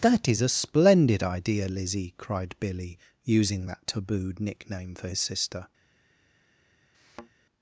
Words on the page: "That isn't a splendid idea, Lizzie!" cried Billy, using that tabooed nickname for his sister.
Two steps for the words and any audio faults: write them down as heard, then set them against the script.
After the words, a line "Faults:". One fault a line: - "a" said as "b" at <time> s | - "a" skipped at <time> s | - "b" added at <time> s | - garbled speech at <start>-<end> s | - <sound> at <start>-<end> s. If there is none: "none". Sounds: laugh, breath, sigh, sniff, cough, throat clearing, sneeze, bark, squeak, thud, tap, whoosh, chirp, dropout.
"That is a splendid idea, Lizzie!" cried Billy, using that tabooed nickname for his sister.
Faults:
- "isn't" said as "is" at 0.3 s
- thud at 6.9-7.3 s